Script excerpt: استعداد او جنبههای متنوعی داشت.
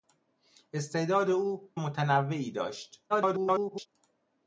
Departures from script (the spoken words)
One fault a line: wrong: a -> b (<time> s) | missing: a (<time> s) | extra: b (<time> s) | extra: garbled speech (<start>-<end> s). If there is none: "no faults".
missing: جنبههای (1.7 s)
extra: garbled speech (3.1-3.9 s)